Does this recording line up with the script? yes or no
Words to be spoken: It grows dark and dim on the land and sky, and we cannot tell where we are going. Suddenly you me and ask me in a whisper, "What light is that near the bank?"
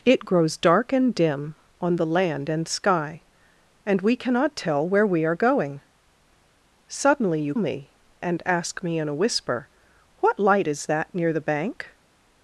yes